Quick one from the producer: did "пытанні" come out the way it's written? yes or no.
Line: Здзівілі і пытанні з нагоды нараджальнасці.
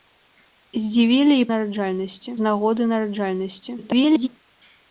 no